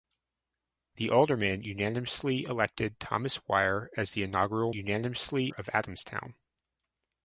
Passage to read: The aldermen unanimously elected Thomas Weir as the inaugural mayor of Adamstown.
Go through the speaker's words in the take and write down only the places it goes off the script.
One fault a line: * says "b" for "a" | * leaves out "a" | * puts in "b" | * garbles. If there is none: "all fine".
* says "unanimously" for "mayor"